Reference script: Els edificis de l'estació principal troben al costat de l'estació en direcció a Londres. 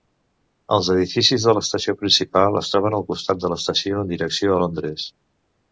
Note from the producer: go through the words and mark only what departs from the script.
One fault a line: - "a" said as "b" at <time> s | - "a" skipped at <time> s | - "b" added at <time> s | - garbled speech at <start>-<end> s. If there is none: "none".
- "es" added at 2.6 s